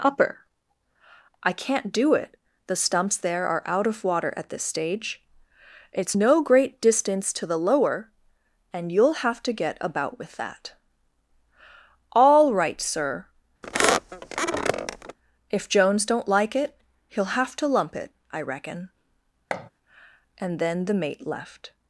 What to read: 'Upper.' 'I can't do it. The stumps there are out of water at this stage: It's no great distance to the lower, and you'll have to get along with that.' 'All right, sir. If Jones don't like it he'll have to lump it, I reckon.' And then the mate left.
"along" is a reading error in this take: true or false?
true